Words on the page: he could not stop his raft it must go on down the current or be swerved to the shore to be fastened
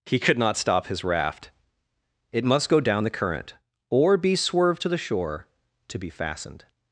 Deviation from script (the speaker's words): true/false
true